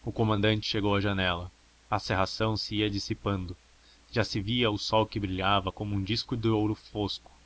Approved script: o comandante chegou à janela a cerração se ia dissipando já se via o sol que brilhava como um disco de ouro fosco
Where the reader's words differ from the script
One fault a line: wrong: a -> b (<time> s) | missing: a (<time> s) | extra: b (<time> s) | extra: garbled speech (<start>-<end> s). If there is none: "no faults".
no faults